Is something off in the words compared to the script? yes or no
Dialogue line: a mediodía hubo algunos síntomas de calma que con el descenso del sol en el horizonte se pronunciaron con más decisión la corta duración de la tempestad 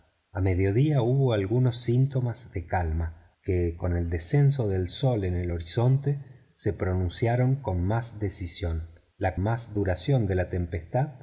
yes